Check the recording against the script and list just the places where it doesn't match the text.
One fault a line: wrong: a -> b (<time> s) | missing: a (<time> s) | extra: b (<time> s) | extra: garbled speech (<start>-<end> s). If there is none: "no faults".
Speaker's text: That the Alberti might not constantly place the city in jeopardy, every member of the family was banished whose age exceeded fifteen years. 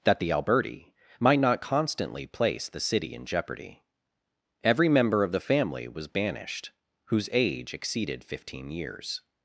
no faults